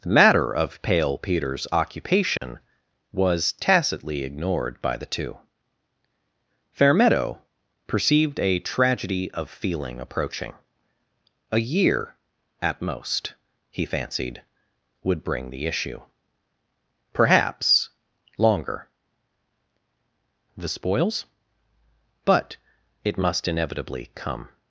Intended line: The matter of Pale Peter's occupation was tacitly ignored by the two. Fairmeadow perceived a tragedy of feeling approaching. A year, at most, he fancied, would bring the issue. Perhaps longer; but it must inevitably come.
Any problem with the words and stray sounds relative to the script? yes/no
yes